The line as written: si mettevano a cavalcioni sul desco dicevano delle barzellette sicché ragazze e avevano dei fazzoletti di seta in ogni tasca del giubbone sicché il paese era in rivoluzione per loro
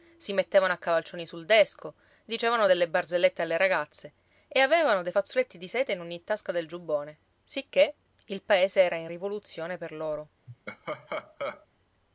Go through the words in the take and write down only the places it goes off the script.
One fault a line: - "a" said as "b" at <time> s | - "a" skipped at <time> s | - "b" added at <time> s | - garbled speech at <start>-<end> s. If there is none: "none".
- "sicché" said as "alle" at 3.4 s